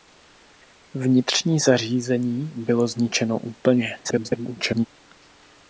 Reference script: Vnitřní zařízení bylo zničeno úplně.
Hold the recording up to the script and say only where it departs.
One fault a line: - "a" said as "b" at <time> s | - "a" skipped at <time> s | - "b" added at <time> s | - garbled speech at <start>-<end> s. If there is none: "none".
- garbled speech at 4.0-4.9 s